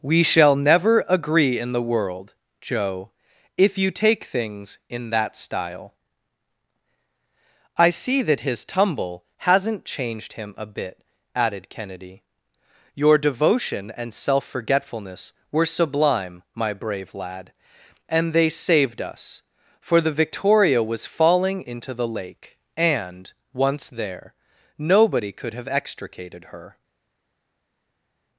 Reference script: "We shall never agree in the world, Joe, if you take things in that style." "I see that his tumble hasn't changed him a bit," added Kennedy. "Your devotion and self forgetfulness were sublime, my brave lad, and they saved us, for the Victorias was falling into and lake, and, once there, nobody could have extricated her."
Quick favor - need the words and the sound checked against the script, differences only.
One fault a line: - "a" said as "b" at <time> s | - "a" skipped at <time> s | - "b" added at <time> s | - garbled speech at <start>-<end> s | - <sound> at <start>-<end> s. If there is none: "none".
- "Victorias" said as "Victoria" at 20.1 s
- "and" said as "the" at 21.9 s